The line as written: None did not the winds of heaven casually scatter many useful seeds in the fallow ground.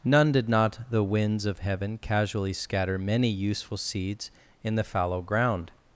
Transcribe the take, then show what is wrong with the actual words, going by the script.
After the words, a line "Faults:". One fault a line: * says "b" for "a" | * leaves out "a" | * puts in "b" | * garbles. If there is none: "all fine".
None did not the winds of heaven casually scatter many useful seeds in the fallow ground.
Faults:
all fine